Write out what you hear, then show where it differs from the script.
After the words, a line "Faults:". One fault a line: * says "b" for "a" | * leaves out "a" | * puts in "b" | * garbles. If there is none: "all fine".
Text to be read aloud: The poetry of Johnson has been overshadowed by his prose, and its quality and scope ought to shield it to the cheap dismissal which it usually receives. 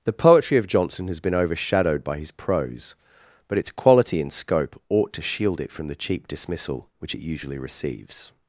The poetry of Johnson has been overshadowed by his prose, but its quality and scope ought to shield it from the cheap dismissal which it usually receives.
Faults:
* says "but" for "and"
* says "from" for "to"